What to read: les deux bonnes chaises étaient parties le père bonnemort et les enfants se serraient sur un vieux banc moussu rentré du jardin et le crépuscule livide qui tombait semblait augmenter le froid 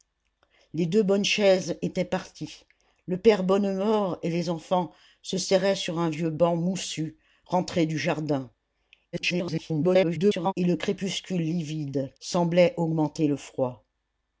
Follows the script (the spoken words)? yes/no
no